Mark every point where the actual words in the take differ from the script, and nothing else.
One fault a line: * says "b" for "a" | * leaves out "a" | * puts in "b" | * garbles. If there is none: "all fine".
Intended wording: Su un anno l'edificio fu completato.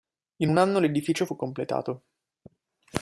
* says "In" for "Su"